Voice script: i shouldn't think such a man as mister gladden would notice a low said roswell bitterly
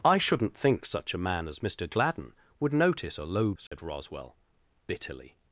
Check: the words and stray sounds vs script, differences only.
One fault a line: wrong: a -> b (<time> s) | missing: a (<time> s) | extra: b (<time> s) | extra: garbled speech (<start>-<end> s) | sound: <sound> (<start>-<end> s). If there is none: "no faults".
sound: dropout (3.7-3.7 s)